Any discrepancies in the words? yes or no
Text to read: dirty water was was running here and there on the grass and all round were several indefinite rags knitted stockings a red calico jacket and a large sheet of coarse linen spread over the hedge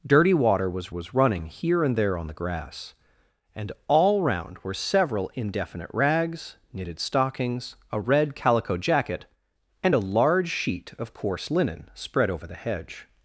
no